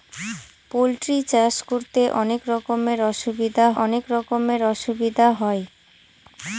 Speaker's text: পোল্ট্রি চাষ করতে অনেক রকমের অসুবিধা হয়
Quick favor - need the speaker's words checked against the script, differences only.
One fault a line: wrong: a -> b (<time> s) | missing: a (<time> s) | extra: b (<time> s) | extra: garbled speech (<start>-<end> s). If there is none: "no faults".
extra: অনেক রকমের অসুবিধা (3.8 s)